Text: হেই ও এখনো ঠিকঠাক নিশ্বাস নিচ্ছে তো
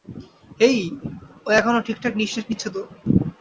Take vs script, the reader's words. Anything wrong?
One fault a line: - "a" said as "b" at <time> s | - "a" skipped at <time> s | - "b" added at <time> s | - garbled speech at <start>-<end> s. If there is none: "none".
none